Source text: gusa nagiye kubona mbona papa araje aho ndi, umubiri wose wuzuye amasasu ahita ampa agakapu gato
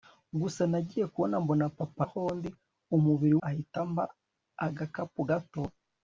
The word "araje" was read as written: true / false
false